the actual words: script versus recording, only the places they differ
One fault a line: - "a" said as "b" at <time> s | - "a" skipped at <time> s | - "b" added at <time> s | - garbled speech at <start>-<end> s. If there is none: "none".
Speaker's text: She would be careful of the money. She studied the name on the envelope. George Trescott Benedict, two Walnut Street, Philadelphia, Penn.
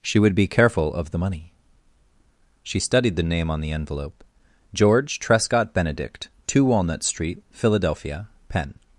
none